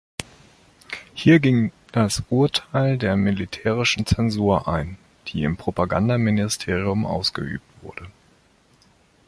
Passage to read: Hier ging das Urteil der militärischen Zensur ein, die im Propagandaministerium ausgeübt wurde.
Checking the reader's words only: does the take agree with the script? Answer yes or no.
yes